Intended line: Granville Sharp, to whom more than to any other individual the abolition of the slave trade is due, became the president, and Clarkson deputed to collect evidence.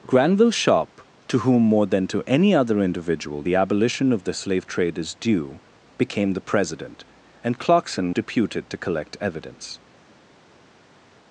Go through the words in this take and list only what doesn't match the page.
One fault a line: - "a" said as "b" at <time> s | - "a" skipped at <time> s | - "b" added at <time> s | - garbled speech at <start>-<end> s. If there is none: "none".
none